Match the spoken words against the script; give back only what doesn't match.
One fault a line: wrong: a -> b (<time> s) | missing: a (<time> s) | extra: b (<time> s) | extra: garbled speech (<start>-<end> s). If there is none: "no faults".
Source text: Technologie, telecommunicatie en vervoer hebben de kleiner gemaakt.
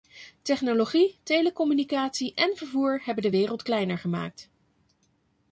extra: wereld (3.3 s)